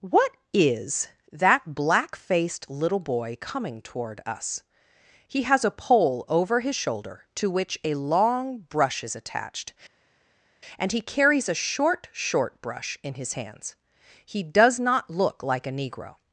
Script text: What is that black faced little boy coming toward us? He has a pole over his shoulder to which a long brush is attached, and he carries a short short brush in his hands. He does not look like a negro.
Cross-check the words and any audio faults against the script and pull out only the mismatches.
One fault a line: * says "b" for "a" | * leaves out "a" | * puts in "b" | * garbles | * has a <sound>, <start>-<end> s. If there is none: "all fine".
all fine